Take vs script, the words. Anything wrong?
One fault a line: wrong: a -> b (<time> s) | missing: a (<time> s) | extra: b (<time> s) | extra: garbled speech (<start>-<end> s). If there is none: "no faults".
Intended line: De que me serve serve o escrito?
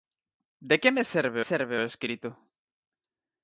no faults